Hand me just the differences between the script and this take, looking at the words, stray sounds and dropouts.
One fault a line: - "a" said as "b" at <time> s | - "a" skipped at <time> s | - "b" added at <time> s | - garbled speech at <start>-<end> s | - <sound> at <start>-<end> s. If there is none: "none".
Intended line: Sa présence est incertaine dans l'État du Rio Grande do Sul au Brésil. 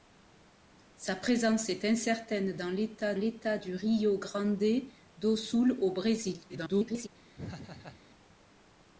- "l'État" added at 3.2 s
- garbled speech at 6.5-7.1 s
- laugh at 7.4-8.0 s